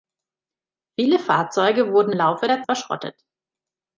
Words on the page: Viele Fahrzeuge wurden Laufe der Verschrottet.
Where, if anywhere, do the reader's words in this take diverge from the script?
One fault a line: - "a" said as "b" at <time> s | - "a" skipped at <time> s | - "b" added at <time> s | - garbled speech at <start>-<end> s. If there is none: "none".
none